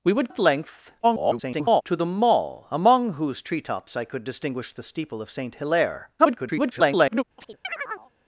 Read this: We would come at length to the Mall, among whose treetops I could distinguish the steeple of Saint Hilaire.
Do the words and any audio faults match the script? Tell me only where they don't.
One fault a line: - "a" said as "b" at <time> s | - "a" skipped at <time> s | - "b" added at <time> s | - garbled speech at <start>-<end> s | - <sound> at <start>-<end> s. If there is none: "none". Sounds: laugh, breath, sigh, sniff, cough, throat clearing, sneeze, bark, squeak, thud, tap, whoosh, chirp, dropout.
- "come" skipped at 0.3 s
- garbled speech at 1.0-1.8 s
- garbled speech at 6.2-7.2 s
- chirp at 7.4-8.1 s